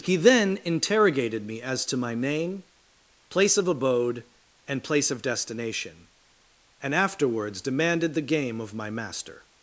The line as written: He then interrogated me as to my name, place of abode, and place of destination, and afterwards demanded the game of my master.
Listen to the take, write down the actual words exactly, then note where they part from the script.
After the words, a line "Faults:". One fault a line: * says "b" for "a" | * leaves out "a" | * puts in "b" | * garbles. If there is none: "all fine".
He then interrogated me as to my name, place of abode, and place of destination, and afterwards demanded the game of my master.
Faults:
all fine